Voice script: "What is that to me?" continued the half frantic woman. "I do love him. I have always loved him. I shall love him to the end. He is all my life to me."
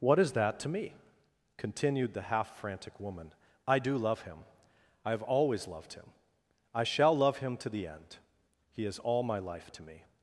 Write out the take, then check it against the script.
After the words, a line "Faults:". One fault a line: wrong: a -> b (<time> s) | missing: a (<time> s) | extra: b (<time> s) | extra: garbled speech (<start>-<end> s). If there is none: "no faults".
"What is that to me?" continued the half frantic woman. "I do love him. I have always loved him. I shall love him to the end. He is all my life to me."
Faults:
no faults